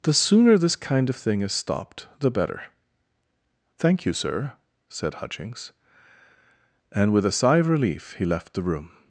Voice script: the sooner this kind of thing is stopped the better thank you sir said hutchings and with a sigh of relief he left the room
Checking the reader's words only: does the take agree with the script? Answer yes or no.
yes